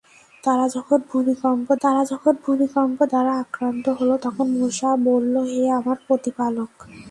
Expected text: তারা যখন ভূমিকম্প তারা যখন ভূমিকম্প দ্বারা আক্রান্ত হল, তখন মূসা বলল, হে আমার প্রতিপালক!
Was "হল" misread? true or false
false